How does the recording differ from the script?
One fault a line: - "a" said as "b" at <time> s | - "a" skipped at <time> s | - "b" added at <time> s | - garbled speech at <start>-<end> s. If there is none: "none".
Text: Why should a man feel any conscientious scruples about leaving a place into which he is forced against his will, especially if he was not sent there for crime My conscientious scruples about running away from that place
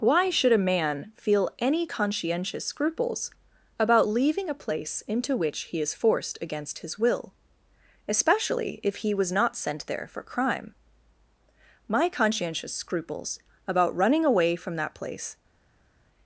none